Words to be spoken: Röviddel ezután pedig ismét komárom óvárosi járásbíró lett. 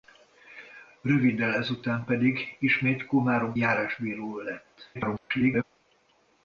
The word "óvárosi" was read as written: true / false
false